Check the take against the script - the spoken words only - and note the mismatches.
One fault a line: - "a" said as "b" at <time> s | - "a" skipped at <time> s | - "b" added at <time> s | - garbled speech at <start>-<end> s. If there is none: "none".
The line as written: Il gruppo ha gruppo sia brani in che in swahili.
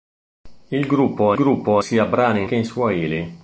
none